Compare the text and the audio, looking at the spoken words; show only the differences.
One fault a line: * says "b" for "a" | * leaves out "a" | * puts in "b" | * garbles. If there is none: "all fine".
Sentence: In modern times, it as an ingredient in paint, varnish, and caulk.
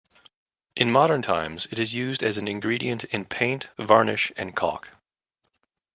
* puts in "is used"